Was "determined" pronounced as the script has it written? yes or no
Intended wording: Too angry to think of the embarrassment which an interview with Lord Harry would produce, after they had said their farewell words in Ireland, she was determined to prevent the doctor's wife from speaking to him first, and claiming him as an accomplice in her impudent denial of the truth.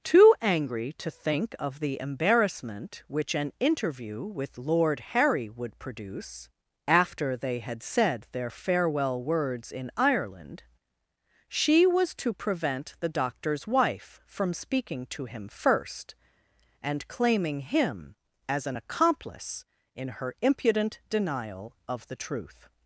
no